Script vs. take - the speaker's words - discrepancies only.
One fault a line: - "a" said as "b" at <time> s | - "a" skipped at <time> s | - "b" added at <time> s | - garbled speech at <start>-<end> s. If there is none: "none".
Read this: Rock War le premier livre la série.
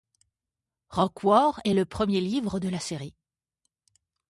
- "est" added at 1.6 s
- "de" added at 2.6 s